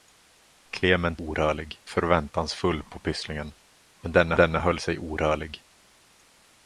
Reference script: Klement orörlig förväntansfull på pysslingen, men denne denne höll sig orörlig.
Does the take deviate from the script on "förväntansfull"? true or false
false